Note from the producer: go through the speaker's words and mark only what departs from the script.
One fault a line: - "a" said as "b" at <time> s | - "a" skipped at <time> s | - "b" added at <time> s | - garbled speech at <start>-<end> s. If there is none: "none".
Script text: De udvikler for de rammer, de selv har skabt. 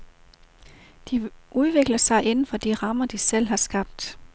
- "sig inden" added at 2.0 s